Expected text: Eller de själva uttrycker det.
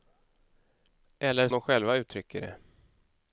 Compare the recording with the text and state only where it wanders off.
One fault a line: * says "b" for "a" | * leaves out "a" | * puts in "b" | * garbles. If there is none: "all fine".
all fine